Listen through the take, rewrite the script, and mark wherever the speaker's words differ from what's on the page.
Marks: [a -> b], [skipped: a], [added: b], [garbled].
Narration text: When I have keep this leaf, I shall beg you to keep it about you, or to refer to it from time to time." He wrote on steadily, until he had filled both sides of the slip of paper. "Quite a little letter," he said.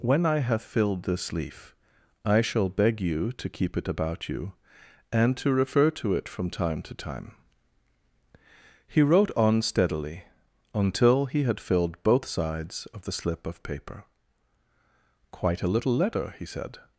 When I have [keep -> filled] this leaf, I shall beg you to keep it about you, [or -> and] to refer to it from time to time." He wrote on steadily, until he had filled both sides of the slip of paper. "Quite a little letter," he said.